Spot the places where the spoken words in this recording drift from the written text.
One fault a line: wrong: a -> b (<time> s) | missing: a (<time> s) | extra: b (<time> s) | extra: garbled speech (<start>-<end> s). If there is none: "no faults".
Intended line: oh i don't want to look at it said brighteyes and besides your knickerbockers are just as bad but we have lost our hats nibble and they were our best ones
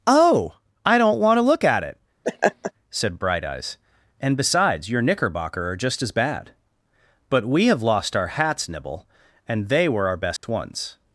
wrong: knickerbockers -> knickerbocker (5.0 s)